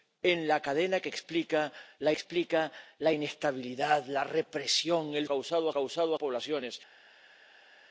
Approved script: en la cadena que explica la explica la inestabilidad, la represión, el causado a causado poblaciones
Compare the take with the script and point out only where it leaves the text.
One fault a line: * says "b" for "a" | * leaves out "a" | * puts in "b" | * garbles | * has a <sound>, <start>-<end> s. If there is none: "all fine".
all fine